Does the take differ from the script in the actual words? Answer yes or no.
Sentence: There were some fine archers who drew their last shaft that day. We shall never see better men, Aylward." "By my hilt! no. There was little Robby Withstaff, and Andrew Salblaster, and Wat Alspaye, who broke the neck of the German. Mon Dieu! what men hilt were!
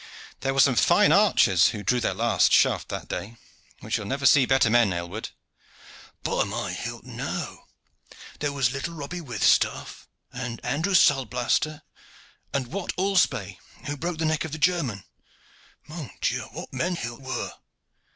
no